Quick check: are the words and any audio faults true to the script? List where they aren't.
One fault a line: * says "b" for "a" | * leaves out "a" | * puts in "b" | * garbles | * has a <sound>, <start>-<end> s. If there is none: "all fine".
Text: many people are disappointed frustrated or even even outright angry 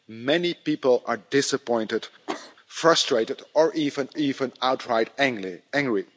* has a cough, 2.3-2.5 s